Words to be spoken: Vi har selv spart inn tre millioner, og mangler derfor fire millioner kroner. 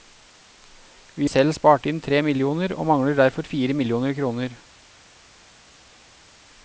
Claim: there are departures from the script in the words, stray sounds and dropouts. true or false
true